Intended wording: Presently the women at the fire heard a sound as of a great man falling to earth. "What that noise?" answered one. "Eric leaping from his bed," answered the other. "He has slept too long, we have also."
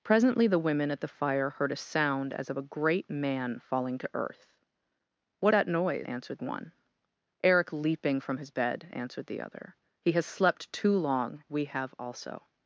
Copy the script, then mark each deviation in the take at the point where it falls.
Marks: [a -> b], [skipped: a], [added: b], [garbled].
Presently the women at the fire heard a sound as of a great man falling to earth. "What that noise?" answered one. "Eric leaping from his bed," answered the other. "He has slept too long, we have also."